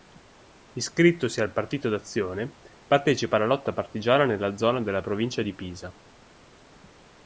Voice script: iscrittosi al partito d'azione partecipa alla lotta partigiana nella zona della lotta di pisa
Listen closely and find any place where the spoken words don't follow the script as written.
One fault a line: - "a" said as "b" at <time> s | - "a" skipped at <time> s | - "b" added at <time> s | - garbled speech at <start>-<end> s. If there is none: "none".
- "lotta" said as "provincia" at 5.0 s